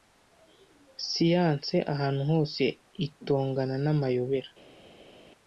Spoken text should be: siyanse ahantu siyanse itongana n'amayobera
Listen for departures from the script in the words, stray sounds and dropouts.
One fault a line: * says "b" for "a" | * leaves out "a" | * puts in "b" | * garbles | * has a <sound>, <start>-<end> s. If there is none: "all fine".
* says "hose" for "siyanse"